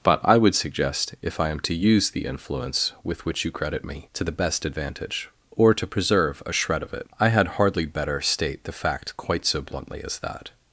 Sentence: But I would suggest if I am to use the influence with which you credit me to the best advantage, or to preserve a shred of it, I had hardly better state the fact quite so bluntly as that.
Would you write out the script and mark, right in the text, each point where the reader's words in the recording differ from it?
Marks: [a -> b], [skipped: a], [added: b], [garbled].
But I would suggest if I am to use the influence with which you credit me to the best advantage, or to preserve a shred of it, I had hardly better state the fact quite so bluntly as that.